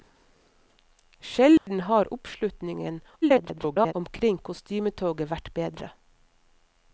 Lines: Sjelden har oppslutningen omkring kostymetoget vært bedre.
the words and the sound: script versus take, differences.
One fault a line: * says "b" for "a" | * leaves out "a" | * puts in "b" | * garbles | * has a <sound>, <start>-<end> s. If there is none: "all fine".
* has a dropout, 1.6-1.7 s
* garbles